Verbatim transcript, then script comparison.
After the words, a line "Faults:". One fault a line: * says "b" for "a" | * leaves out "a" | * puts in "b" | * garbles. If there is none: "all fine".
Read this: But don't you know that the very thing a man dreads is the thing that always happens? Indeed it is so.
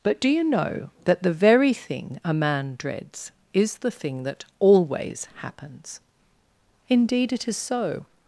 But do you know that the very thing a man dreads is the thing that always happens? Indeed it is so.
Faults:
* says "do" for "don't"